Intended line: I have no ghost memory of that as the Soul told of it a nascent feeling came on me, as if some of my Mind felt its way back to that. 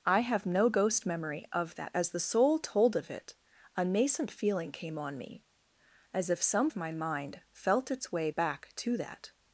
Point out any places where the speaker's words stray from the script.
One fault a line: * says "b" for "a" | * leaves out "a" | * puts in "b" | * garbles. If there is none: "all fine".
all fine